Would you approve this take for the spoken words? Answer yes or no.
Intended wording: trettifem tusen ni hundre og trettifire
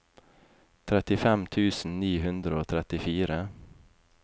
yes